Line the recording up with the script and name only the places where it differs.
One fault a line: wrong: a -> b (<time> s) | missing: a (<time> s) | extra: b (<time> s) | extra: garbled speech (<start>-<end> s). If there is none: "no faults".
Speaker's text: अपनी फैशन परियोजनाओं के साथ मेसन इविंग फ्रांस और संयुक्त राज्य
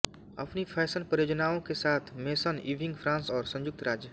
no faults